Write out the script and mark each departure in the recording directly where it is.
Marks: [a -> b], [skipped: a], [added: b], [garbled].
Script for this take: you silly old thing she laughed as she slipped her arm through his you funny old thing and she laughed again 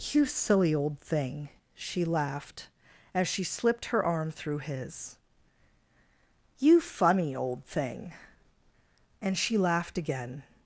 you silly old thing she laughed as she slipped her arm through his you funny old thing and she laughed again